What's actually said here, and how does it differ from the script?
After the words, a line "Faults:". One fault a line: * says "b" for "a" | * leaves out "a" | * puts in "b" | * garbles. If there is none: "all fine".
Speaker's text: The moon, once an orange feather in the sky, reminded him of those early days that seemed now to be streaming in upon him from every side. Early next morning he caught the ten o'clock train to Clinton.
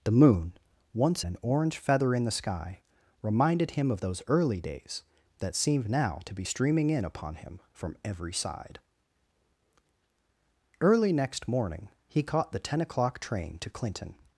The moon, once an orange feather in the sky, reminded him of those early days that seemed now to be streaming in upon him from every side. Early next morning he caught the ten o'clock train to Clinton.
Faults:
all fine